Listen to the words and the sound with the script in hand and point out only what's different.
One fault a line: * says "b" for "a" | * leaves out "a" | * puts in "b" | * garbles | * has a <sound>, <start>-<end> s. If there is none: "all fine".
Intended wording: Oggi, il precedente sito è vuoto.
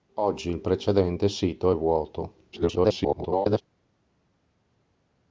* garbles